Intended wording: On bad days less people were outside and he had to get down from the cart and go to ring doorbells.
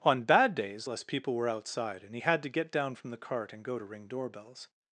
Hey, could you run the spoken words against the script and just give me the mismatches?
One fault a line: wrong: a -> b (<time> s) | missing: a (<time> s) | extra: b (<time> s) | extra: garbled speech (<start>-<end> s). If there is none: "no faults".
no faults